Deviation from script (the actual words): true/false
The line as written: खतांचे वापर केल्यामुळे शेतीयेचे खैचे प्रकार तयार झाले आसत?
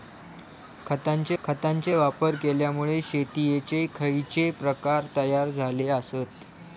true